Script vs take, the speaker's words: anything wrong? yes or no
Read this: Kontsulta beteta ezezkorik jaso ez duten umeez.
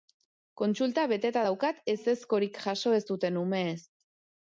yes